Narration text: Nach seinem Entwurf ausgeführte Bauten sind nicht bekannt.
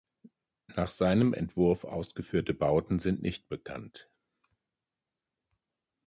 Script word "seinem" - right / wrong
right